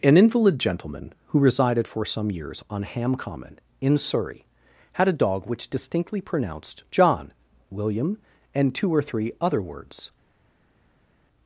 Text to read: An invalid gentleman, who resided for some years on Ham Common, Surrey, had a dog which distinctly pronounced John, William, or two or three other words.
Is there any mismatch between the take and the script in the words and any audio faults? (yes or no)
yes